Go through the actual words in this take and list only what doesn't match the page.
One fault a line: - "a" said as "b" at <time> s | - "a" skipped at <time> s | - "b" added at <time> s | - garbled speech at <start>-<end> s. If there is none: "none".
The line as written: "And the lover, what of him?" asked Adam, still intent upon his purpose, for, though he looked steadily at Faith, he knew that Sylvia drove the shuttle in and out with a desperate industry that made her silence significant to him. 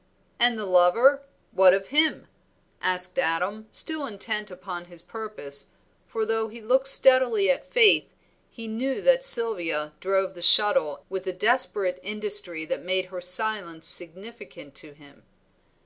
- "in and out" skipped at 11.0 s